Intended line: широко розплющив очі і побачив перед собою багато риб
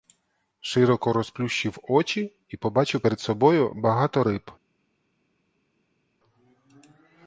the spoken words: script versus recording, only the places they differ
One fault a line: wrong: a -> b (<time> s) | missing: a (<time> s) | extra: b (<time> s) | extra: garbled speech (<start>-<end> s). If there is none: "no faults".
no faults